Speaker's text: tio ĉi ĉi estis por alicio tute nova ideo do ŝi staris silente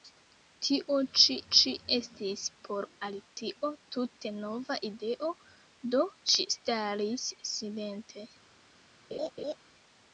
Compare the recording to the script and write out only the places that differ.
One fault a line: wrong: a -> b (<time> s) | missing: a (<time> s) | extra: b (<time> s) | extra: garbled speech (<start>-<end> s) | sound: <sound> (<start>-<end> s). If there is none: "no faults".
sound: dropout (3.3-3.4 s)
sound: laugh (9.1-9.6 s)